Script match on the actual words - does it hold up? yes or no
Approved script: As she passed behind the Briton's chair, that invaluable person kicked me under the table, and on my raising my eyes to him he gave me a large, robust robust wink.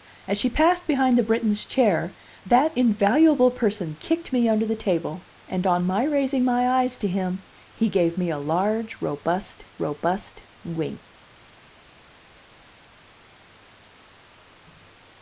yes